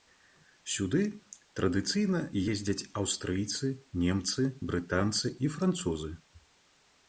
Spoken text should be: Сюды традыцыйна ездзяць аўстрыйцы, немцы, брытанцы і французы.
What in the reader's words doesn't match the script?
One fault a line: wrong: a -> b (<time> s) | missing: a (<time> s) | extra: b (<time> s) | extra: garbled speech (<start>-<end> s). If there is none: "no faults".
no faults